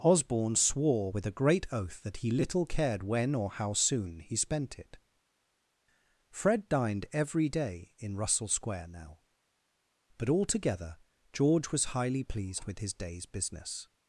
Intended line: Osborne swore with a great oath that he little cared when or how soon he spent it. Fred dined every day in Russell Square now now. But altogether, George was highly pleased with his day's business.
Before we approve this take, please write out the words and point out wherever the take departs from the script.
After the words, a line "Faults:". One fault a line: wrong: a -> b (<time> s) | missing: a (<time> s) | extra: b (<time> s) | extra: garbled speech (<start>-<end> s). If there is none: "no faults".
Osborne swore with a great oath that he little cared when or how soon he spent it. Fred dined every day in Russell Square now. But altogether, George was highly pleased with his day's business.
Faults:
missing: now (9.2 s)